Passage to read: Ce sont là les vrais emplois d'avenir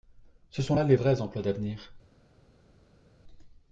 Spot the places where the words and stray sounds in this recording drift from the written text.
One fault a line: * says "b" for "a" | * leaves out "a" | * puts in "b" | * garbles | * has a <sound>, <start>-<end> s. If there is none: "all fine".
all fine